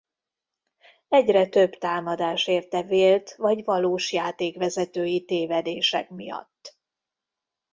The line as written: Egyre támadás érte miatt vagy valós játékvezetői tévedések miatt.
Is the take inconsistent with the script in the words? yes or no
yes